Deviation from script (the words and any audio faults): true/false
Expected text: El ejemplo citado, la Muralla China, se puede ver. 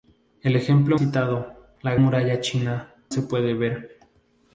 false